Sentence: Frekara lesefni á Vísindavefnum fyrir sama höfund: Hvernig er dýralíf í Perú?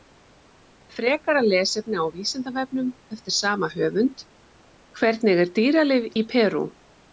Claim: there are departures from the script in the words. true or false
true